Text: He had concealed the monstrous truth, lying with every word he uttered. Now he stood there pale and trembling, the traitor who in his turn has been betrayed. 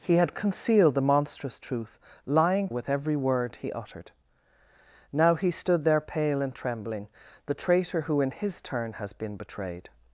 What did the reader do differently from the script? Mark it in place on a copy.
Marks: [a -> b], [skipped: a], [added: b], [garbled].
He had concealed the monstrous truth, lying with every word he uttered. Now he stood there pale and trembling, the traitor who in his turn has been betrayed.